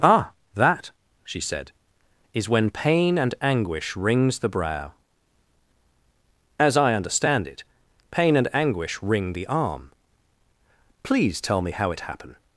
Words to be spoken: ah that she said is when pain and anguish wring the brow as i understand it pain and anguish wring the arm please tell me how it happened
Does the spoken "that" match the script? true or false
true